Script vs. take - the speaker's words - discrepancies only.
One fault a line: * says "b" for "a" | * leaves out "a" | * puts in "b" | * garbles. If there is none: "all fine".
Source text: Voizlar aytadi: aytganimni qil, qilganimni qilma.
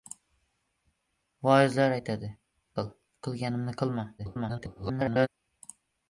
* leaves out "aytganimni"
* garbles